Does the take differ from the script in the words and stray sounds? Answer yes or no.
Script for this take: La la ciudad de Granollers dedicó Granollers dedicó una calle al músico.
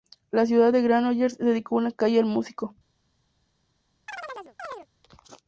yes